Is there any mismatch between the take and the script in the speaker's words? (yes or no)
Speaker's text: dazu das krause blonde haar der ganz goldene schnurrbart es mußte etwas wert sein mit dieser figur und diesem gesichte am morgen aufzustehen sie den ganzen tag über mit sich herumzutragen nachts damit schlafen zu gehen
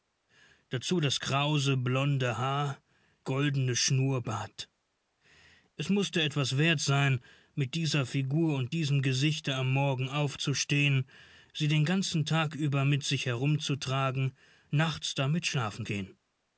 yes